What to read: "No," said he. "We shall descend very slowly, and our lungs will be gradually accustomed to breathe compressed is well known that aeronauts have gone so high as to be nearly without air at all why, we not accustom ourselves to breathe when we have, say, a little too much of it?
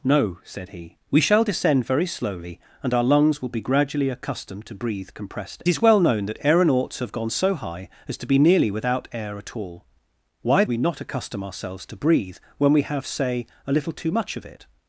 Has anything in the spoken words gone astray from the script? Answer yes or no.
no